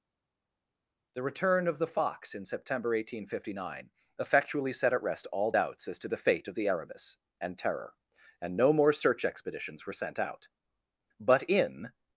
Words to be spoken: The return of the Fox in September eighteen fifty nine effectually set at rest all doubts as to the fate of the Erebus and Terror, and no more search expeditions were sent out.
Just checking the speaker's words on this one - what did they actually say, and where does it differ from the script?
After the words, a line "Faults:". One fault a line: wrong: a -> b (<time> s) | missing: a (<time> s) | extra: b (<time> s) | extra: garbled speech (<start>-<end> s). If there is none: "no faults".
The return of the Fox in September eighteen fifty nine effectually set at rest all doubts as to the fate of the Erebus and Terror, and no more search expeditions were sent out. But in
Faults:
extra: But in (11.2 s)